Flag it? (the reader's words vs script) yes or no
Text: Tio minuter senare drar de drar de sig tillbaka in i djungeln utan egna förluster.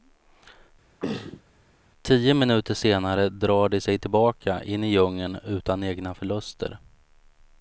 yes